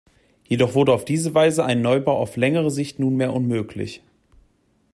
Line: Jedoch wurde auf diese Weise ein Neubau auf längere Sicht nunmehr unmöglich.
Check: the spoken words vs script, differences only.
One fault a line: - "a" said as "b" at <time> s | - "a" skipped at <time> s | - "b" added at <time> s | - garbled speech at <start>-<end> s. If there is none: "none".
none